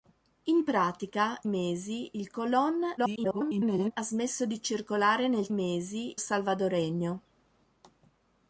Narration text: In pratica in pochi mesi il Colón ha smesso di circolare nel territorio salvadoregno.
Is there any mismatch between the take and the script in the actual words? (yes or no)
yes